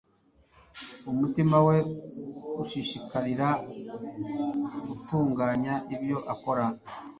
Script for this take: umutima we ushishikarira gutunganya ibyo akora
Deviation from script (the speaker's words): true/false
false